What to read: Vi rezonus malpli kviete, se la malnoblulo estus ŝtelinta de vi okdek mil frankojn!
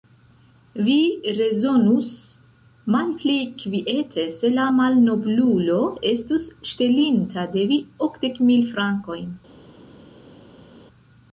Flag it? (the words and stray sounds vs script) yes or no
no